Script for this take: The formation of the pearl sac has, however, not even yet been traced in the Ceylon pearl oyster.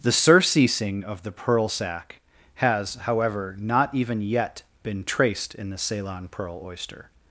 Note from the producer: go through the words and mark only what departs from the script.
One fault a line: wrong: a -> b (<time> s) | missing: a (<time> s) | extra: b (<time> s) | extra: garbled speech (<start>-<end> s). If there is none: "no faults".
wrong: formation -> surceasing (0.1 s)